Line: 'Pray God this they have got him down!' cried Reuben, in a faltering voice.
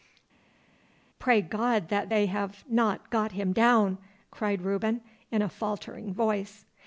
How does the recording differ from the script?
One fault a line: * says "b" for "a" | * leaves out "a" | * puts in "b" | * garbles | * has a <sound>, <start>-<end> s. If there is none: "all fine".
* says "that" for "this"
* puts in "not"